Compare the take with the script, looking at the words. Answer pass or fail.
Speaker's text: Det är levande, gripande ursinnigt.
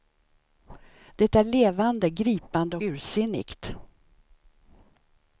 pass